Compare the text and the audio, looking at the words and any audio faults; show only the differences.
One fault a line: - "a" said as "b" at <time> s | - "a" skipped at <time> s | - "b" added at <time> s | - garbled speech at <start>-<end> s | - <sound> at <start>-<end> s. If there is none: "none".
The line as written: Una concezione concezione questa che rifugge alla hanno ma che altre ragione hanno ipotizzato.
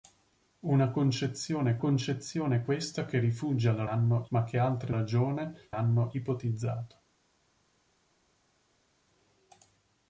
none